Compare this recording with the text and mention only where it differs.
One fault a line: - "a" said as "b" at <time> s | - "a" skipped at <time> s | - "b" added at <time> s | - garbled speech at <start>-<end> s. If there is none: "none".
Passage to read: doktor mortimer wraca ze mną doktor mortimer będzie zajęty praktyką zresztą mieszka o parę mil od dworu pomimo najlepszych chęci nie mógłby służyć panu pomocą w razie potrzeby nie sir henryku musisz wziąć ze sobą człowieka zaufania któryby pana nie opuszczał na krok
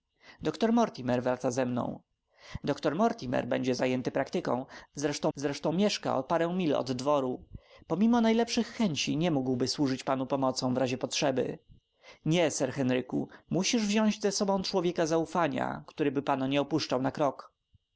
- "zresztą" added at 5.3 s